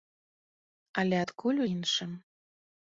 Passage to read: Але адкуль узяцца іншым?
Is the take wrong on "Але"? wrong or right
right